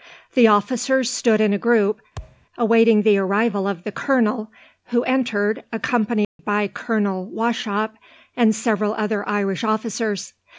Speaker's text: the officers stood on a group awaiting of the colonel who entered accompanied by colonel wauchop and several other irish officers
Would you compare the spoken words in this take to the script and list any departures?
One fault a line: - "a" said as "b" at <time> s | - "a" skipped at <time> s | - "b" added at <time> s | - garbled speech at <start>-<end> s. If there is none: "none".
- "on" said as "in" at 1.4 s
- "the arrival" added at 3.0 s